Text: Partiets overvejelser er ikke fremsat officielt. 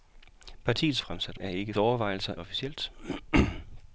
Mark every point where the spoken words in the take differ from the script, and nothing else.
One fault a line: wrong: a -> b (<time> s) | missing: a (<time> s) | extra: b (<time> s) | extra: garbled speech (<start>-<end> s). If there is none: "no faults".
wrong: overvejelser -> fremsat (1.0 s)
wrong: fremsat -> overvejelser (1.8 s)